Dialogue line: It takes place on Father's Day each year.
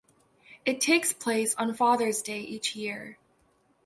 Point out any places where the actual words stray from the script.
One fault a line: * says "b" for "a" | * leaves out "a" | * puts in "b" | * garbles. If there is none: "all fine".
all fine